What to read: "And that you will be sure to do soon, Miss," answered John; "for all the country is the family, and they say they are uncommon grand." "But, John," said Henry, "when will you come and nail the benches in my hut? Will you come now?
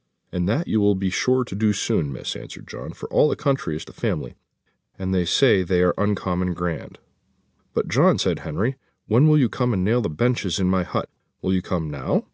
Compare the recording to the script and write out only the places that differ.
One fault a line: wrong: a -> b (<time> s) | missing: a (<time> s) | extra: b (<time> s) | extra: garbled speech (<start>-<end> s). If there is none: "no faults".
no faults